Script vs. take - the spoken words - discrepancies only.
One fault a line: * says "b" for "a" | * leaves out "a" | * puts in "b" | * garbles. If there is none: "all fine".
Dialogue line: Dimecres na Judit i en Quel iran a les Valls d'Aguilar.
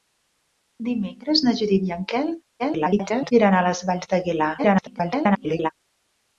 * garbles
* garbles